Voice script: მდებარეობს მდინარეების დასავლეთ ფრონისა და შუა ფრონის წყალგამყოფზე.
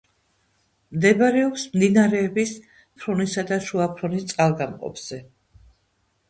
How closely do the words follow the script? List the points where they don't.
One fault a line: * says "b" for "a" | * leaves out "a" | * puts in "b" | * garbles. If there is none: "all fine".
* leaves out "დასავლეთ"